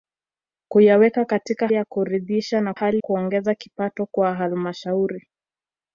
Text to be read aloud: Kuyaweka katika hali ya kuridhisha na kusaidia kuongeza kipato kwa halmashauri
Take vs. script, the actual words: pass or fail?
fail